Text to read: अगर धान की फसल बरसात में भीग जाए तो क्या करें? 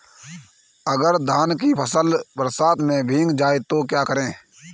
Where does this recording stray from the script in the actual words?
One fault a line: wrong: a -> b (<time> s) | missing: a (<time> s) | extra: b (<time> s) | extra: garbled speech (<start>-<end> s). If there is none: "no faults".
no faults